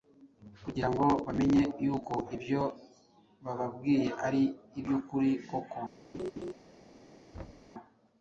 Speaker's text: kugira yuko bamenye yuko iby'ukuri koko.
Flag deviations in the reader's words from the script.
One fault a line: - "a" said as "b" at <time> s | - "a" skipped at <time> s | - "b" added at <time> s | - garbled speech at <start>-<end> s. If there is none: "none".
- "yuko" said as "ngo" at 0.9 s
- "ibyo bababwiye ari" added at 2.4 s